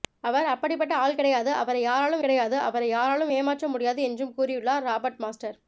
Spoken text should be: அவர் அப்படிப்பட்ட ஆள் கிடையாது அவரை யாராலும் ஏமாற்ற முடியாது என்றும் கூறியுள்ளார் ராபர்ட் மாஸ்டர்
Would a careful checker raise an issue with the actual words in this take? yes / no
yes